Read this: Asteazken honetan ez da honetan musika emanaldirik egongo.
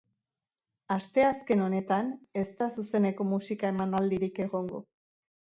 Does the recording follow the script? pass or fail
fail